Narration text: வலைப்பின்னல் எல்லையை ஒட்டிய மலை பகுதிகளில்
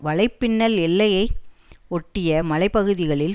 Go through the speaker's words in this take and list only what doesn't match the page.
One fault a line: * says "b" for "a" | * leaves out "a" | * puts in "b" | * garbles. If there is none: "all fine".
all fine